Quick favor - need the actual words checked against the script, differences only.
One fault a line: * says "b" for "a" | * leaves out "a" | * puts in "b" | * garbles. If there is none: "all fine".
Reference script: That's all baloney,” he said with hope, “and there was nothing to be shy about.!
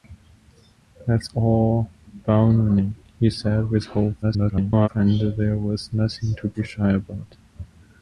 * garbles